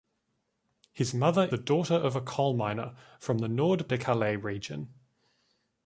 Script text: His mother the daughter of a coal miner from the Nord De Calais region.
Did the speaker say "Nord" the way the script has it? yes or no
yes